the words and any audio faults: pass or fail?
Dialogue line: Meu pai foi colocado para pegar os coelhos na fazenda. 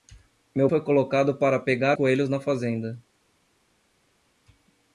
fail